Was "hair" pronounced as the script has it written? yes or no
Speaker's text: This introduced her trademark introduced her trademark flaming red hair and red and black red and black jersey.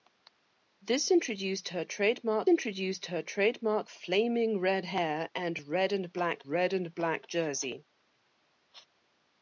yes